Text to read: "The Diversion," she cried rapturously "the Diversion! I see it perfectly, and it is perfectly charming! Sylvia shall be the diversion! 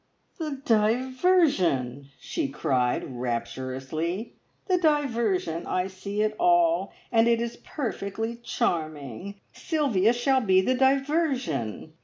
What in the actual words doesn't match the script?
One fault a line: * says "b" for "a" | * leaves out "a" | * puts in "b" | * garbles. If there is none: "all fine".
* says "all" for "perfectly"